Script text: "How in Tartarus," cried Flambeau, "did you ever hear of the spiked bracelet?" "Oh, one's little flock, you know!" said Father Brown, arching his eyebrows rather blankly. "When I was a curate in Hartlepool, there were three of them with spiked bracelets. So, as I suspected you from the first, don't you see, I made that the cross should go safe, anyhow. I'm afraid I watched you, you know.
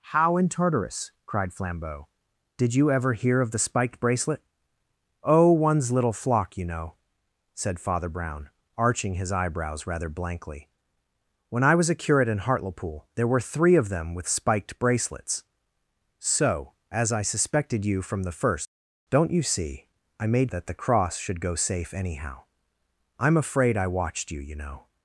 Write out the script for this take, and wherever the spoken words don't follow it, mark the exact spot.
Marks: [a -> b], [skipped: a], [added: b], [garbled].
"How in Tartarus," cried Flambeau, "did you ever hear of the spiked bracelet?" "Oh, one's little flock, you know!" said Father Brown, arching his eyebrows rather blankly. "When I was a curate in Hartlepool, there were three of them with spiked bracelets. So, as I suspected you from the first, don't you see, I made that the cross should go safe, anyhow. I'm afraid I watched you, you know.